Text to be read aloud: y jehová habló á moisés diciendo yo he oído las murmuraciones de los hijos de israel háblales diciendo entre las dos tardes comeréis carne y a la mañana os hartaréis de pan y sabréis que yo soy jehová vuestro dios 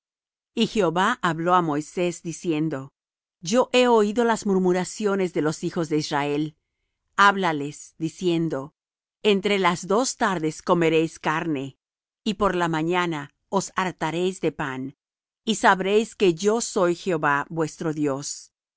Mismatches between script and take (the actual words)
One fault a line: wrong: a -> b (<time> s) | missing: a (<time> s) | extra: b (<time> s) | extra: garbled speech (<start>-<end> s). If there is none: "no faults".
wrong: a -> por (12.3 s)